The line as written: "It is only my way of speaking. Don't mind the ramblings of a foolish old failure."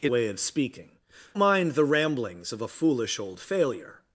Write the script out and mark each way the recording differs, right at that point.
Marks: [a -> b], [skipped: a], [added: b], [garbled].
"It [skipped: is only my] way of speaking. [skipped: Don't] mind the ramblings of a foolish old failure."